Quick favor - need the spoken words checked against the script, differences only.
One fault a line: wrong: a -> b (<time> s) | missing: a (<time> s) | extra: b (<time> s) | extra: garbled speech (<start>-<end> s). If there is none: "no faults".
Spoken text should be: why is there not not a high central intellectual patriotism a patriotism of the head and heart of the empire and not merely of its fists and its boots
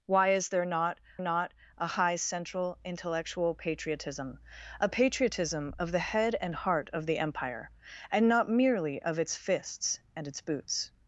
no faults